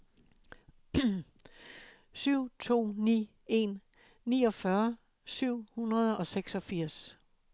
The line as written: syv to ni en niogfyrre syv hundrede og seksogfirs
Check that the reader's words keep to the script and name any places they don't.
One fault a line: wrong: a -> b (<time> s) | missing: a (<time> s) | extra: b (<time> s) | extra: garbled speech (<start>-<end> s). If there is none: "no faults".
no faults